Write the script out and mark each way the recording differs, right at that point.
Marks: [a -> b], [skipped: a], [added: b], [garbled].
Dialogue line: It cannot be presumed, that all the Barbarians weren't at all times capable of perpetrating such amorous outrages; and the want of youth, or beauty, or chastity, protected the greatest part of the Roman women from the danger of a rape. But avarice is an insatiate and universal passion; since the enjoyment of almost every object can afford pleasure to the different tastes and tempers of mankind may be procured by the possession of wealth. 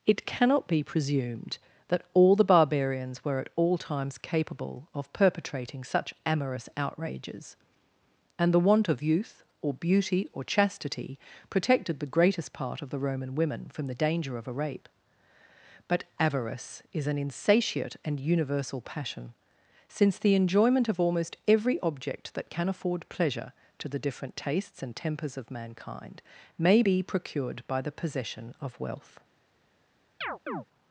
It cannot be presumed, that all the Barbarians [weren't -> were] at all times capable of perpetrating such amorous outrages; and the want of youth, or beauty, or chastity, protected the greatest part of the Roman women from the danger of a rape. But avarice is an insatiate and universal passion; since the enjoyment of almost every object [added: that] can afford pleasure to the different tastes and tempers of mankind may be procured by the possession of wealth.